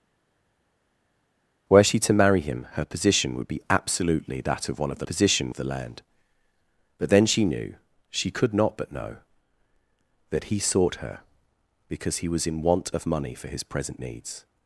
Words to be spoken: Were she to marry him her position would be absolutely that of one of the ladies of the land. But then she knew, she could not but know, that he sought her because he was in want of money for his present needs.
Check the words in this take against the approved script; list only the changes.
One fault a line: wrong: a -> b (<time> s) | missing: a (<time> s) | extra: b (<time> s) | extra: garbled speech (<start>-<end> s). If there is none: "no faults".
wrong: ladies -> position (5.0 s)